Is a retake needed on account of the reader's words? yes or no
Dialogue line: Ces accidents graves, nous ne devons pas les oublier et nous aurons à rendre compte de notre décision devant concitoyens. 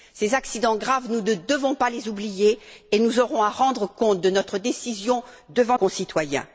no